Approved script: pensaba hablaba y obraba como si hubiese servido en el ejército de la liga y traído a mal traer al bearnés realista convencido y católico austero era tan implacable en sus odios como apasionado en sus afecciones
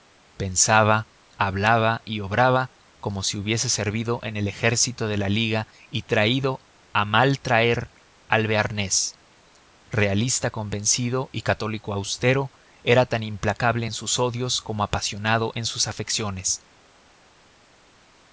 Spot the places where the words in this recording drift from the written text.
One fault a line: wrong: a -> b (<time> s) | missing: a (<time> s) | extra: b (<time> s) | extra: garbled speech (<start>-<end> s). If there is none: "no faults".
no faults